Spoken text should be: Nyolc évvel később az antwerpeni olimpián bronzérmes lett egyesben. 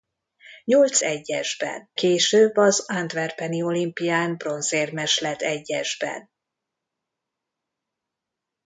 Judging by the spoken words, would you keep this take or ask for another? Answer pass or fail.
fail